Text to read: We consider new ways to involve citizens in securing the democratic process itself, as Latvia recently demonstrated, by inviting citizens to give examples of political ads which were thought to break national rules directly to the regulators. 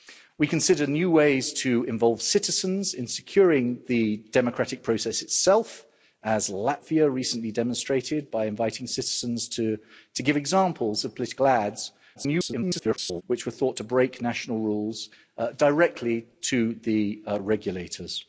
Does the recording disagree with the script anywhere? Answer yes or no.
yes